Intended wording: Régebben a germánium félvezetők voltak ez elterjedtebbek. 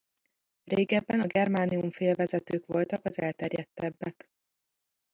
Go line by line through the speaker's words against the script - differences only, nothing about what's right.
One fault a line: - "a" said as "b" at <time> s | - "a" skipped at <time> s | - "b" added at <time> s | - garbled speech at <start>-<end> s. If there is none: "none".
- "ez" said as "az" at 3.0 s